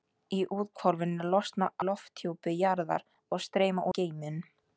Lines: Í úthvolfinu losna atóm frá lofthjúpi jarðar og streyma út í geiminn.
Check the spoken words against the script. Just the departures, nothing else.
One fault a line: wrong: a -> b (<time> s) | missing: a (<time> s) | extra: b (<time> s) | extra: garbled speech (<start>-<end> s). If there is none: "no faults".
missing: atóm frá (1.7 s)
missing: út (3.9 s)